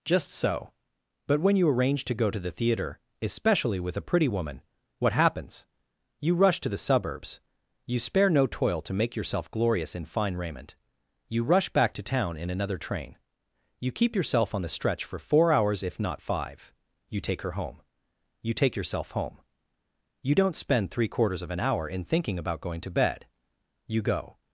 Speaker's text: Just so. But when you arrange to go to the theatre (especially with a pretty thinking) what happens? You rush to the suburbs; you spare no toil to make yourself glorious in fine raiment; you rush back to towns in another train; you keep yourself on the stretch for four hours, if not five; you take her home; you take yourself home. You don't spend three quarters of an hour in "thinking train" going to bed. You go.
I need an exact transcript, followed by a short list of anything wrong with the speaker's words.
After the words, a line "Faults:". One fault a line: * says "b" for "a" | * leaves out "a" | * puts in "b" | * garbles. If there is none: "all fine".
Just so. But when you arrange to go to the theatre (especially with a pretty woman) what happens? You rush to the suburbs; you spare no toil to make yourself glorious in fine raiment; you rush back to town in another train; you keep yourself on the stretch for four hours, if not five; you take her home; you take yourself home. You don't spend three quarters of an hour in "thinking about" going to bed. You go.
Faults:
* says "woman" for "thinking"
* says "town" for "towns"
* says "about" for "train"